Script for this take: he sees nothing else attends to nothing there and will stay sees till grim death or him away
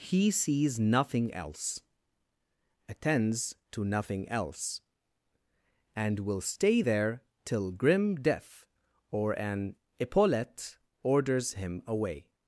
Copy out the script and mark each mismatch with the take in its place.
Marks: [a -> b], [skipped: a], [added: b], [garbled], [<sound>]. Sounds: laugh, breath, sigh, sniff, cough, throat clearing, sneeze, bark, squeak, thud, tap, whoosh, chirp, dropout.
he sees nothing else attends to nothing [there -> else] and will stay [sees -> there] till grim death or [added: an epaulette orders] him away